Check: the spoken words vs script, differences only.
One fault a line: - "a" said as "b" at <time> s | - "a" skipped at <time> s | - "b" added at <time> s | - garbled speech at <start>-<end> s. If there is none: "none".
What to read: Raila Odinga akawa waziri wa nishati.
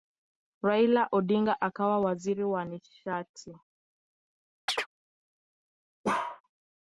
none